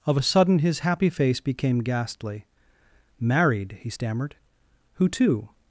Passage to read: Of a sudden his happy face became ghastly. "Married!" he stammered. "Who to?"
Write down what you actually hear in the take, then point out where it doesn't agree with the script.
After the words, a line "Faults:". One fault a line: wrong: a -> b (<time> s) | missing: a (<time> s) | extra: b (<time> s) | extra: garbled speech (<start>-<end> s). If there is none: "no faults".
Of a sudden his happy face became ghastly. "Married!" he stammered. "Who to?"
Faults:
no faults